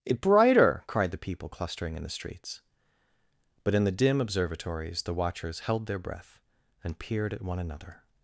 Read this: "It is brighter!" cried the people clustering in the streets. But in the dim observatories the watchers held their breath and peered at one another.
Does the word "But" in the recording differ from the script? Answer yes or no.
no